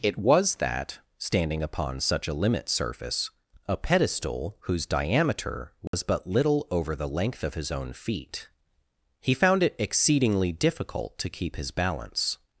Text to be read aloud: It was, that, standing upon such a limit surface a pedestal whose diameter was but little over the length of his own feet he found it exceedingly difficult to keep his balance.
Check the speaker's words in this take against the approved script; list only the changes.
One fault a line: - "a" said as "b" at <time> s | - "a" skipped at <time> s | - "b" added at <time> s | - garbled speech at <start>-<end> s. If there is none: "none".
none